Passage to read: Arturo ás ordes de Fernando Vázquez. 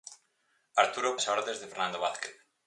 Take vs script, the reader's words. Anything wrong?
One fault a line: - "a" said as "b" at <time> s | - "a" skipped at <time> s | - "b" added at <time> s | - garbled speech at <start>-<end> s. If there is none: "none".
none